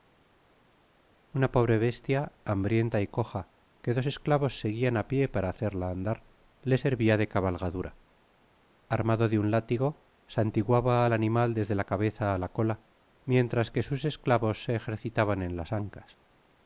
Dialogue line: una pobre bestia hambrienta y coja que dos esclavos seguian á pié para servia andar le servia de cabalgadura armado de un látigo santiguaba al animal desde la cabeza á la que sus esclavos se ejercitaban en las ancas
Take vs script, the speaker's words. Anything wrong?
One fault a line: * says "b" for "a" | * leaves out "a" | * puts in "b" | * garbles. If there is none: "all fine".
* says "hacerla" for "servia"
* puts in "cola mientras"